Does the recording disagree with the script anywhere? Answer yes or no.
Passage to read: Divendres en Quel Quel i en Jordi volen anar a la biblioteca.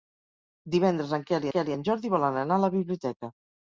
no